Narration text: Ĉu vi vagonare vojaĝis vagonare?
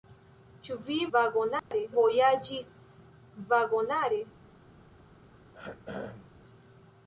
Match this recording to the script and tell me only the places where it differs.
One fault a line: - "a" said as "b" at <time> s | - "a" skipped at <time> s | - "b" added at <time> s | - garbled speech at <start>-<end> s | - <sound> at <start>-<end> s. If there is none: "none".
- dropout at 1.6-1.7 s
- throat clearing at 5.5-6.4 s